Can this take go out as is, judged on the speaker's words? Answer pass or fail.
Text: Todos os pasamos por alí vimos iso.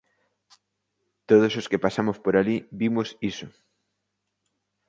fail